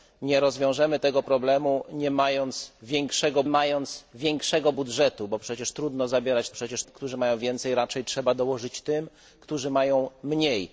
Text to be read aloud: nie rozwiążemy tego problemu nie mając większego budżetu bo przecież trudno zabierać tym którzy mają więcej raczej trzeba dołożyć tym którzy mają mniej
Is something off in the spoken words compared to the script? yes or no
yes